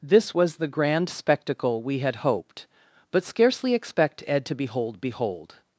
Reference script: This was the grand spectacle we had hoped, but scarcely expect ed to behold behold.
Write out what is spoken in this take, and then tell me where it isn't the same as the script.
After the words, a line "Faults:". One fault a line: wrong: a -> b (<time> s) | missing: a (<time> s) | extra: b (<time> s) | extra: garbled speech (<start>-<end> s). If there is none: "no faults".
This was the grand spectacle we had hoped, but scarcely expect ed to behold behold.
Faults:
no faults